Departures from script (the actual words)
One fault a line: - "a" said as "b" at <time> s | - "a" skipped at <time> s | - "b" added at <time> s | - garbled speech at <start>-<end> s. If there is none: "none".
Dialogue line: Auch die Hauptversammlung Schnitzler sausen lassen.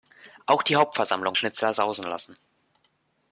none